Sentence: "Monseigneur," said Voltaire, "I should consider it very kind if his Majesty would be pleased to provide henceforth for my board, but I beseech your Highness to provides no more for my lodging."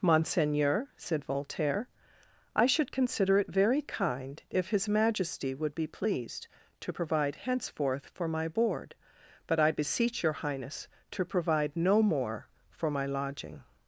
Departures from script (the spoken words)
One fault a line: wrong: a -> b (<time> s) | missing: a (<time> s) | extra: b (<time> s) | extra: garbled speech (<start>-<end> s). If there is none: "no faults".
wrong: provides -> provide (11.2 s)